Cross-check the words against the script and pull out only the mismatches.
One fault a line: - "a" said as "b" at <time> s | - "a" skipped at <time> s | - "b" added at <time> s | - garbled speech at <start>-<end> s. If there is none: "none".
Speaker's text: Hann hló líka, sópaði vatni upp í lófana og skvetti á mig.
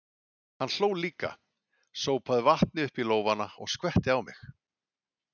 none